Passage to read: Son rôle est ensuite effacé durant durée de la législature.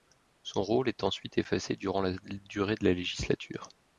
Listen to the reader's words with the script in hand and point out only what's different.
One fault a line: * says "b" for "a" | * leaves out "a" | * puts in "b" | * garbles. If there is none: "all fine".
* puts in "la"